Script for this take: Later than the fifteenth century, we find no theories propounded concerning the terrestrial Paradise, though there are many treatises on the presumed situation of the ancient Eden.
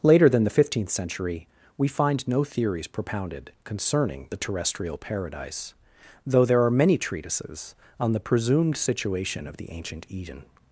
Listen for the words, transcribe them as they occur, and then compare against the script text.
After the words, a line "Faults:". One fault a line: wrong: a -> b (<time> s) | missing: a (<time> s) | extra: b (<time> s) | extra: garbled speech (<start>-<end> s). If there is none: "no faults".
Later than the fifteenth century, we find no theories propounded concerning the terrestrial Paradise, though there are many treatises on the presumed situation of the ancient Eden.
Faults:
no faults